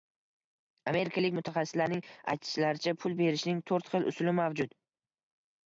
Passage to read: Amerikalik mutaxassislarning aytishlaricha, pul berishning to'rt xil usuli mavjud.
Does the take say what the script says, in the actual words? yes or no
yes